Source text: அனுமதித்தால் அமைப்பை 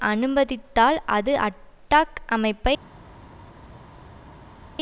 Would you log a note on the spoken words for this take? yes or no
yes